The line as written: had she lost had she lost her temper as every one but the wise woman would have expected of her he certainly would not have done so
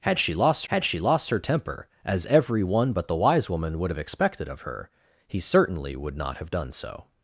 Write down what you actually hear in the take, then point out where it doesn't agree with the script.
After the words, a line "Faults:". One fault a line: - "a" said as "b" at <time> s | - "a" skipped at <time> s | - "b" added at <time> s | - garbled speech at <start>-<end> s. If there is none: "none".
had she lost had she lost her temper as every one but the wise woman would have expected of her he certainly would not have done so
Faults:
none